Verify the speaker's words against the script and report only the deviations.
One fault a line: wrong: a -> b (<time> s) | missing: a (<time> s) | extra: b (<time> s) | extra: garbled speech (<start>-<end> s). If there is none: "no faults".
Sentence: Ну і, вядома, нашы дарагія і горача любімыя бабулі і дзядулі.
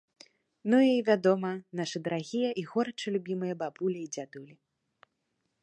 no faults